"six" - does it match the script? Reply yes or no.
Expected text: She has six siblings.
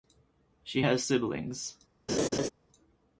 no